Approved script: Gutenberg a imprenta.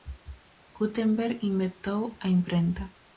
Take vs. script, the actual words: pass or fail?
fail